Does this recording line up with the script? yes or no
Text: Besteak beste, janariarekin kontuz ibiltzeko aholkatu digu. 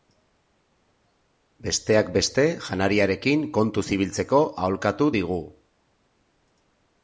yes